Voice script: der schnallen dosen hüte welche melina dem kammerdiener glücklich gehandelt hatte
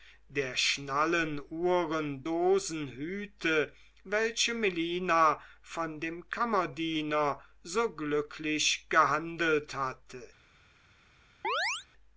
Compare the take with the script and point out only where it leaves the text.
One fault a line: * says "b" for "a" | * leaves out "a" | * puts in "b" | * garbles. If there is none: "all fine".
* puts in "uhren"
* puts in "von"
* puts in "so"